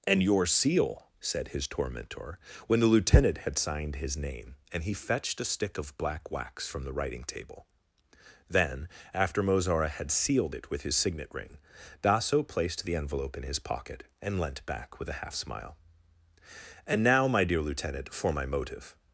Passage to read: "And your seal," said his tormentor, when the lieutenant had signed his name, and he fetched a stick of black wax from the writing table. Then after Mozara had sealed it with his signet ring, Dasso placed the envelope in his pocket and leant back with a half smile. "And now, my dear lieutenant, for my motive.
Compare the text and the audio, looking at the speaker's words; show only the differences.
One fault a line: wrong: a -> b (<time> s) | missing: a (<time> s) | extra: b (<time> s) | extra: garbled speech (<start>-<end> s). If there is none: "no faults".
no faults